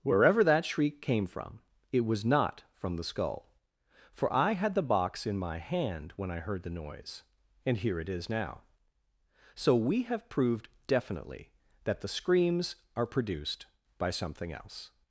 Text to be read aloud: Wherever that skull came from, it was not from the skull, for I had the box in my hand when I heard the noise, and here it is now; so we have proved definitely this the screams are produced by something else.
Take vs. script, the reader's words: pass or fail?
fail